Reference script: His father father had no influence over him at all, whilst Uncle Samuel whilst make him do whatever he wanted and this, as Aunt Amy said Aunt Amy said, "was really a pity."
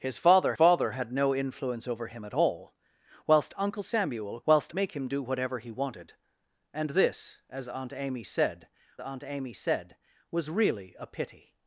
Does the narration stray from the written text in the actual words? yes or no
no